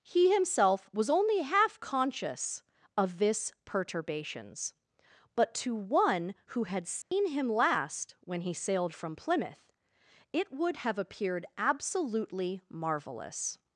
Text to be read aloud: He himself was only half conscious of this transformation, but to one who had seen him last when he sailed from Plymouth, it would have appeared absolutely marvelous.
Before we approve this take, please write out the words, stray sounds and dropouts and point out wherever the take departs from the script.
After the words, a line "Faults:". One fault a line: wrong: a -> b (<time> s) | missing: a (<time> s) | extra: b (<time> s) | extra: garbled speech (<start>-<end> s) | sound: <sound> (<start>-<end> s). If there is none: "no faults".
He himself was only half conscious of this perturbations, but to one who had seen him last when he sailed from Plymouth, it would have appeared absolutely marvelous.
Faults:
wrong: transformation -> perturbations (3.6 s)
sound: dropout (7.0-7.1 s)